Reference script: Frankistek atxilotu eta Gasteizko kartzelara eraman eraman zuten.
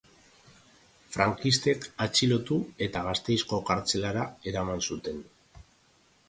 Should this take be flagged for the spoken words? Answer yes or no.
yes